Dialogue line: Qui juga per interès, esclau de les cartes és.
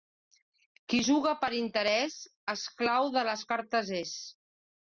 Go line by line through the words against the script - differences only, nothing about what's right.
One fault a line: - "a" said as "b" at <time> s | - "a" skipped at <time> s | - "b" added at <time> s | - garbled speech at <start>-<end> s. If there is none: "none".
none